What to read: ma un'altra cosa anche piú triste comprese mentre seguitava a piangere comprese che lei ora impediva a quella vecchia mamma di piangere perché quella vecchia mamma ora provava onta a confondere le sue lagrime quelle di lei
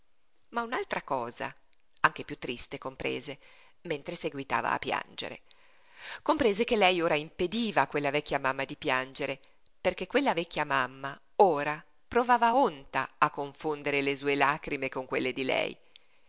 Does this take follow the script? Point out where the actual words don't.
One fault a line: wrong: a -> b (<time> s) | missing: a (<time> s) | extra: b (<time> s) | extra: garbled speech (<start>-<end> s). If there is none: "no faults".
extra: con (14.9 s)